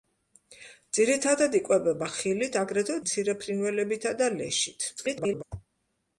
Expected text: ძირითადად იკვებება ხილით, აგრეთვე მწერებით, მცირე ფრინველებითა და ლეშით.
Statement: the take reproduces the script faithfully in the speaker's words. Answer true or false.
false